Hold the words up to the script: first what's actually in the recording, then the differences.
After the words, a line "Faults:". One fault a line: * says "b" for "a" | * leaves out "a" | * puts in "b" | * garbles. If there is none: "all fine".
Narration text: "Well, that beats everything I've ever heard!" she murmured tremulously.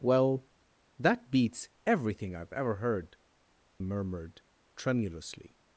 "Well, that beats everything I've ever heard!" murmured tremulously.
Faults:
* leaves out "she"